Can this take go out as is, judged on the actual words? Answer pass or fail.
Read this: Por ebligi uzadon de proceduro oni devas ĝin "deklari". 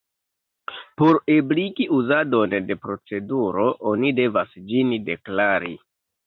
pass